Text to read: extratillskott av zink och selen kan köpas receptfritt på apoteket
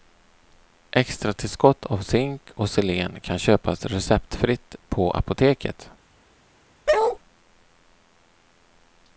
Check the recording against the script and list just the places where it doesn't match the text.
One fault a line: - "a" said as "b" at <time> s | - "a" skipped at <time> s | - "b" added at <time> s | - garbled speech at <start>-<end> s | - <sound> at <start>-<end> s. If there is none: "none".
- bark at 6.9-7.2 s